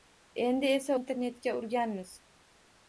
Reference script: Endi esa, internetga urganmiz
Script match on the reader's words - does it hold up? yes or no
yes